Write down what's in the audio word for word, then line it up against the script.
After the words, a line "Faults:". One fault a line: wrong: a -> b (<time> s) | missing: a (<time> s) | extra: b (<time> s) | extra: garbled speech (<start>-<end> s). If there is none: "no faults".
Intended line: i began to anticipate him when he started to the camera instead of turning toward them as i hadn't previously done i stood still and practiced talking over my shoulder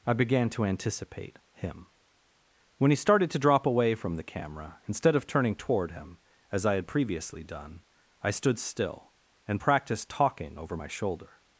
i began to anticipate him when he started to drop away from the camera instead of turning toward him as i had previously done i stood still and practiced talking over my shoulder
Faults:
extra: drop away from (3.4 s)
wrong: them -> him (5.9 s)
wrong: hadn't -> had (6.8 s)